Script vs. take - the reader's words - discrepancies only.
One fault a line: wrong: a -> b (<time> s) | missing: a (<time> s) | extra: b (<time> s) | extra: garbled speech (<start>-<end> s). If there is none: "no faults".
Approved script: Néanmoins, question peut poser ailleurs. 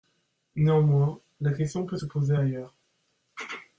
extra: la (1.4 s)
extra: se (1.9 s)